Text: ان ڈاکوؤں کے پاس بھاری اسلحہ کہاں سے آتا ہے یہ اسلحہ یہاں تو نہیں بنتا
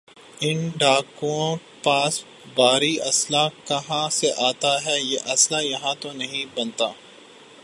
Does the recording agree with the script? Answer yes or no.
no